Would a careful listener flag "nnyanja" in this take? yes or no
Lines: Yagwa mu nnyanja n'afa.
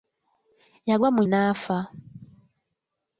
yes